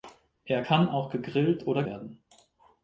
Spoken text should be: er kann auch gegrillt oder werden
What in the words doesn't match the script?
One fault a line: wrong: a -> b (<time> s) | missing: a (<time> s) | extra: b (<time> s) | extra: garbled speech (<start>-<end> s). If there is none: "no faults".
no faults